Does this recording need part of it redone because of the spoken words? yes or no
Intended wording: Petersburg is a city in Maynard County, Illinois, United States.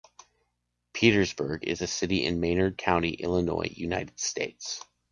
no